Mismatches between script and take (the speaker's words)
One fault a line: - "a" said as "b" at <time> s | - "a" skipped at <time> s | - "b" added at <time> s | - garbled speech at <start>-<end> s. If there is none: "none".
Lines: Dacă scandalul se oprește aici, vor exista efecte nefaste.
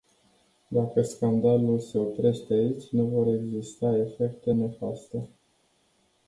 - "nu" added at 2.9 s